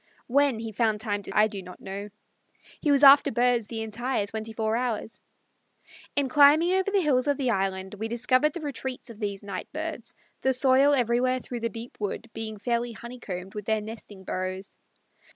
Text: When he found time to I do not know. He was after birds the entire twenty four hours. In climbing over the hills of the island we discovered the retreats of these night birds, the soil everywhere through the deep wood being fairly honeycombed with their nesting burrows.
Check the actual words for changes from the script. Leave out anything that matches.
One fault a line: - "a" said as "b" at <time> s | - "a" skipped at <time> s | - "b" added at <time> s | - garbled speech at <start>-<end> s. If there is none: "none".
none